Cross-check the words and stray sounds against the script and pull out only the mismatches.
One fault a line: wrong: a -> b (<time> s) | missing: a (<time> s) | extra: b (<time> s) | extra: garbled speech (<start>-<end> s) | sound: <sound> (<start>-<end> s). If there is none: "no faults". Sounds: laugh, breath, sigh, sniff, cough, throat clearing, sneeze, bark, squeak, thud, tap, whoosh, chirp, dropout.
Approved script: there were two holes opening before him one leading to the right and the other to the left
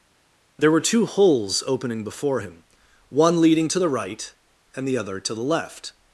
no faults